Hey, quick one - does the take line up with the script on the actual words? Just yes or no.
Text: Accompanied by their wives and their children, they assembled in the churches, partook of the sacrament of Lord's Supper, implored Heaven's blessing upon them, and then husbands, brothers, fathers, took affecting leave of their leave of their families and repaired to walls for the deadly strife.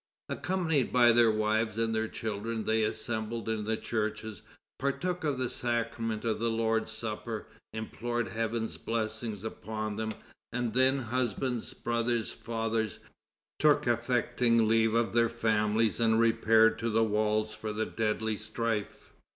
no